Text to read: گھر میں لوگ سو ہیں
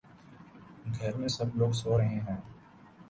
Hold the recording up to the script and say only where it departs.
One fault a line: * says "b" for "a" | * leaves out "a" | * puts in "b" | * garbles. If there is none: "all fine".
* puts in "سب"
* puts in "رہے"